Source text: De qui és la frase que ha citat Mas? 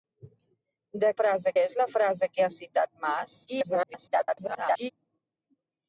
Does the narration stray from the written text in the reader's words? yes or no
yes